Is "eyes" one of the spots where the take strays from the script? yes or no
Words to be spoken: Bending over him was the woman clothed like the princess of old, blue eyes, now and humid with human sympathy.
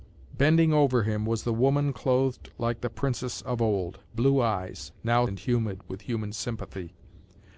no